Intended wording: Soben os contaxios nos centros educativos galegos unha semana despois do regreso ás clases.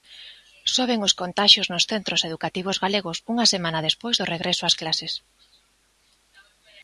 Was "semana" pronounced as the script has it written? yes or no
yes